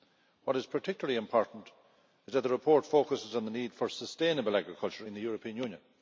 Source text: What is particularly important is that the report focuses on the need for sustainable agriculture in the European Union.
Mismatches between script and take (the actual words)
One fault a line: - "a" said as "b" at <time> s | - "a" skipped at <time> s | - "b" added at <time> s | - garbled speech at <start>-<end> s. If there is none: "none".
none